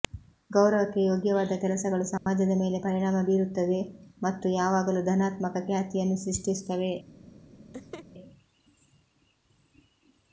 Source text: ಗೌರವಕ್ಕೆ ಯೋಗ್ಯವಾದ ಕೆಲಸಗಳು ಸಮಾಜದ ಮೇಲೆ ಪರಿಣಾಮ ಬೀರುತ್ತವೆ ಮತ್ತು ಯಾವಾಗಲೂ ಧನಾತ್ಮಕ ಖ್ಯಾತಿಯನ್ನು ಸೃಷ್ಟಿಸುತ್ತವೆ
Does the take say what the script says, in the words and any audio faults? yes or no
no